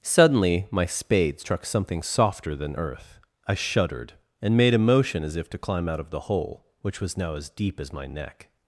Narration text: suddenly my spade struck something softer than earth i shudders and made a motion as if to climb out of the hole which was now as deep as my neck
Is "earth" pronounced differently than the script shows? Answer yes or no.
no